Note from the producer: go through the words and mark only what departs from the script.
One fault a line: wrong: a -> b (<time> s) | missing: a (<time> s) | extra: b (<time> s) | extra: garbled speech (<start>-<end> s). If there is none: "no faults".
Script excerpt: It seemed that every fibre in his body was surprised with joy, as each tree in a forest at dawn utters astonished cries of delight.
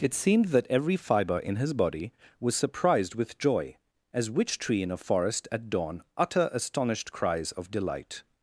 wrong: each -> which (4.3 s)
wrong: utters -> utter (6.2 s)